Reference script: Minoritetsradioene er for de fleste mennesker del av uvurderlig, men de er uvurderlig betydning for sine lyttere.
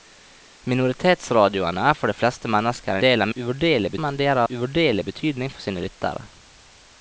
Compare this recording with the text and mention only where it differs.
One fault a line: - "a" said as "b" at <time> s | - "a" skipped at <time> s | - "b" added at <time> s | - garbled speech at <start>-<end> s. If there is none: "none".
none